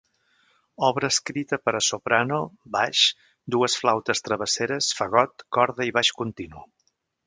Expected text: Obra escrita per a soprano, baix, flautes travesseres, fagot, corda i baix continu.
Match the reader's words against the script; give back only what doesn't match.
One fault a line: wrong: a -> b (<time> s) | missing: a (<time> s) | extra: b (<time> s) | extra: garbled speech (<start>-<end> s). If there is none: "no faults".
extra: dues (3.6 s)